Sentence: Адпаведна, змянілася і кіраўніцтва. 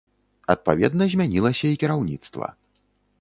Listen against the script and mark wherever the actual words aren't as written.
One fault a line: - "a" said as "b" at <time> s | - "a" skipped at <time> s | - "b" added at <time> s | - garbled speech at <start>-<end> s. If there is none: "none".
none